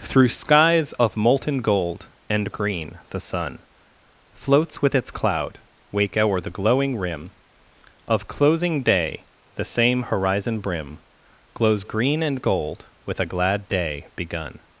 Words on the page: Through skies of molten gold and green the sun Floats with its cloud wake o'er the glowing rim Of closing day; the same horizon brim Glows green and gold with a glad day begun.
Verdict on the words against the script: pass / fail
pass